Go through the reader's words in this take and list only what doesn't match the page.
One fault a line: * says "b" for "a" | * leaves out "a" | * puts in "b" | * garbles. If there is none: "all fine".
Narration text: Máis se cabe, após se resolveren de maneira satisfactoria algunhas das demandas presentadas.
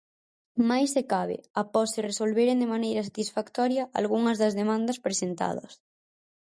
all fine